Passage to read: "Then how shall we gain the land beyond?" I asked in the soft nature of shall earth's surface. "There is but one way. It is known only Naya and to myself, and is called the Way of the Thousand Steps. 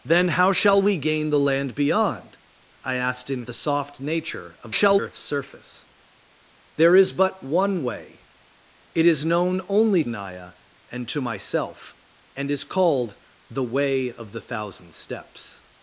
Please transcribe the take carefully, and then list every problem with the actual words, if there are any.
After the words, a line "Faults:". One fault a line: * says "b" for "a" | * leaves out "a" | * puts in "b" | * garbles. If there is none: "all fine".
"Then how shall we gain the land beyond?" I asked in the soft nature of shall earth's surface. "There is but one way. It is known only Naya and to myself, and is called the Way of the Thousand Steps.
Faults:
all fine